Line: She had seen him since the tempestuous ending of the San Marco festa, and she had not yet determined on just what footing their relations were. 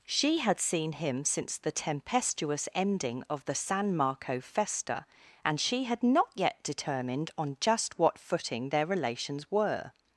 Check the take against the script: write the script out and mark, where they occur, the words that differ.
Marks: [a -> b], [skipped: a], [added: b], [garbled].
She had seen him since the tempestuous ending of the San Marco festa, and she had not yet determined on just what footing their relations were.